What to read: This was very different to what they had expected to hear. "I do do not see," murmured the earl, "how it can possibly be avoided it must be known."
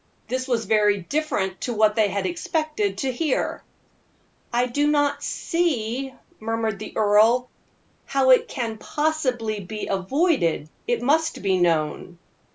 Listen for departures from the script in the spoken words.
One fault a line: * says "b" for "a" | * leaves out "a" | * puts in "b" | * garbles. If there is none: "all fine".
* leaves out "do"